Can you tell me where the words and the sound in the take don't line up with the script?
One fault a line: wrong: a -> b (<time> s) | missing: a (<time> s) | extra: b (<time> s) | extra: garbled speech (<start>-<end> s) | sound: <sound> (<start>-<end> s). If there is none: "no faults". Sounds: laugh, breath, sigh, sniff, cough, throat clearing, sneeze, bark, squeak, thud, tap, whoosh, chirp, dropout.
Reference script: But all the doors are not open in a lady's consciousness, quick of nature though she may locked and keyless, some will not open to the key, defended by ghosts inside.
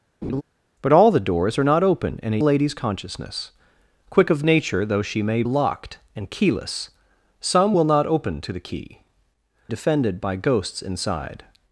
sound: laugh (0.2-0.4 s)